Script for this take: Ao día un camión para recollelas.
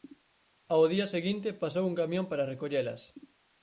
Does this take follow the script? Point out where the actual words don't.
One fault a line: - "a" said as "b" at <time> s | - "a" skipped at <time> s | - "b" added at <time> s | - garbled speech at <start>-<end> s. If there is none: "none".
- "seguinte pasou" added at 1.1 s